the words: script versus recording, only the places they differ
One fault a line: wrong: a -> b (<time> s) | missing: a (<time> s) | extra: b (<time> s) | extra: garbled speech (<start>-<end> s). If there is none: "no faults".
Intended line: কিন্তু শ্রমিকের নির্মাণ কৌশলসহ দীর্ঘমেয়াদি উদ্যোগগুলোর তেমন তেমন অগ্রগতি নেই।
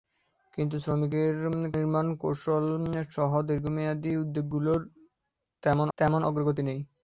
no faults